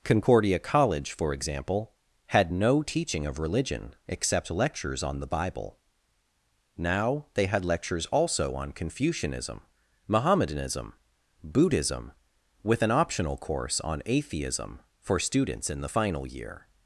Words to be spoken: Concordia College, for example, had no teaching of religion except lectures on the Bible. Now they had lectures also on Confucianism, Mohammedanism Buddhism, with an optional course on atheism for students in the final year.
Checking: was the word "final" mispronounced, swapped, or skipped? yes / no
no